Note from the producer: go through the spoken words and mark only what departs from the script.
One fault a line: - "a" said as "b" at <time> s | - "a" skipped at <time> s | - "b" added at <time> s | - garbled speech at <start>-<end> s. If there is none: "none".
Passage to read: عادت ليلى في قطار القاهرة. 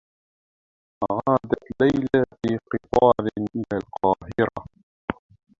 - "إلى" added at 3.5 s